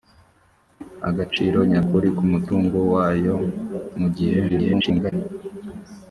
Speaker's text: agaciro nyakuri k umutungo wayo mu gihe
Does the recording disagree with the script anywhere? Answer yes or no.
yes